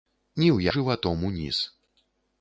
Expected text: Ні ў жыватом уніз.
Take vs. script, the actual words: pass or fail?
pass